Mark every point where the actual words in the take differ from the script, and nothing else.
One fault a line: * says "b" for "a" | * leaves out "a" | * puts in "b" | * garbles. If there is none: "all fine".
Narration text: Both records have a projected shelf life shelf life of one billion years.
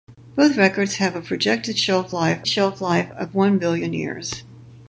all fine